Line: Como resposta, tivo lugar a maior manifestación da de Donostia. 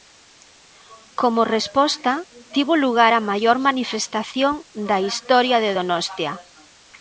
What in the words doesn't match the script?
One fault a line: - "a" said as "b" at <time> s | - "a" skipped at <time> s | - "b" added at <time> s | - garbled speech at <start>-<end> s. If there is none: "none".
- "historia" added at 5.1 s